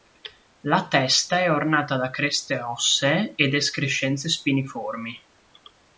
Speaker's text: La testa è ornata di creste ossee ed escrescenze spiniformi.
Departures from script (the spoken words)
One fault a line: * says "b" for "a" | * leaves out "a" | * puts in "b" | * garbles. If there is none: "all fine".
* says "da" for "di"